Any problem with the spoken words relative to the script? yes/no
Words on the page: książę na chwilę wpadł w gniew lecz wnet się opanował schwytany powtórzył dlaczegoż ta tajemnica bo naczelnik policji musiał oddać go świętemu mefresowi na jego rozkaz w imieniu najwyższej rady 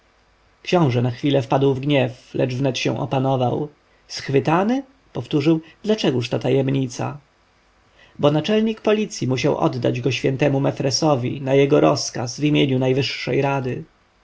no